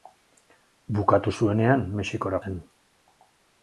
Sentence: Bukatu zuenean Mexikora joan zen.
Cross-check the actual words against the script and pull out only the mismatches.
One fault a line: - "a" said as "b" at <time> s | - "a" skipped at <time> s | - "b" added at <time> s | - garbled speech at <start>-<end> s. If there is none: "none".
- "joan" skipped at 2.4 s